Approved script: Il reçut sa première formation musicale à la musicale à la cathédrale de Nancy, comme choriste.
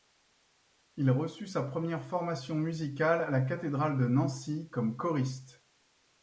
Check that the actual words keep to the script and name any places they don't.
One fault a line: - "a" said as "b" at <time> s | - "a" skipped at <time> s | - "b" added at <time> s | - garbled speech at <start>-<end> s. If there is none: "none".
- "musicale à la" skipped at 3.4 s